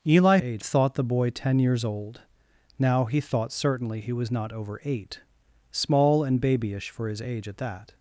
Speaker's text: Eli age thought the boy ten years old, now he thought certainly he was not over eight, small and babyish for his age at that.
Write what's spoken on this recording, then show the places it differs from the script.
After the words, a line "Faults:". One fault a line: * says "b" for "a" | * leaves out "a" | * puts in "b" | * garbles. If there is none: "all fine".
Eli age thought the boy ten years old, now he thought certainly he was not over eight, small and babyish for his age at that.
Faults:
all fine